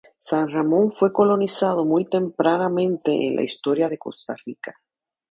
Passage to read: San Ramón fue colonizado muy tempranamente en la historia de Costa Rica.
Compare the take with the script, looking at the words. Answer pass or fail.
pass